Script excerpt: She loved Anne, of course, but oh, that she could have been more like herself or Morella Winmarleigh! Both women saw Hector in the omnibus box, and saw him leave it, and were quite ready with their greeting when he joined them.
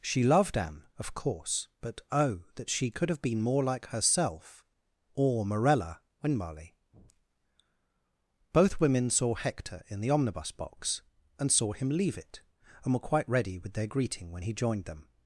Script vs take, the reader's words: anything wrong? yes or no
no